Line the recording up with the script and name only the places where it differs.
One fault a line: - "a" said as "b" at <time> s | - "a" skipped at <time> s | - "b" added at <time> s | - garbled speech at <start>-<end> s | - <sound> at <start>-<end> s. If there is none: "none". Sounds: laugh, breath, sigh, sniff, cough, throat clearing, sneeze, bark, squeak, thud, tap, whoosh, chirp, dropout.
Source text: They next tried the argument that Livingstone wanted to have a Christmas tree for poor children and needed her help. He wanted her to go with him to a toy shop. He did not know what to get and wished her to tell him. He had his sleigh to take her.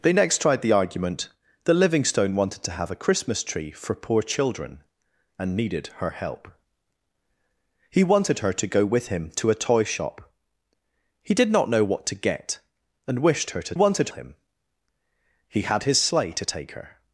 - "tell" said as "wanted" at 13.7 s